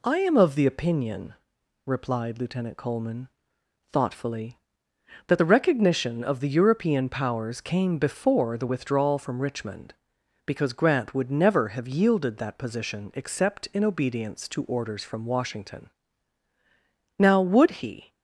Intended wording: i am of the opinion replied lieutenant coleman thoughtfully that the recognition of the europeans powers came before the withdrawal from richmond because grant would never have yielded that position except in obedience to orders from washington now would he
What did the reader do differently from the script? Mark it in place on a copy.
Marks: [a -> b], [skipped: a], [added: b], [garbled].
i am of the opinion replied lieutenant coleman thoughtfully that the recognition of the [europeans -> european] powers came before the withdrawal from richmond because grant would never have yielded that position except in obedience to orders from washington now would he